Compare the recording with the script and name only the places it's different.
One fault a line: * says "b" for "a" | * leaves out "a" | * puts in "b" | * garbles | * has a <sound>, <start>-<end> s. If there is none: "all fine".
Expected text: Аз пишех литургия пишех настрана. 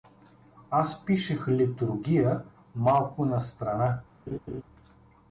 * says "малко" for "пишех"
* has a laugh, 4.3-4.6 s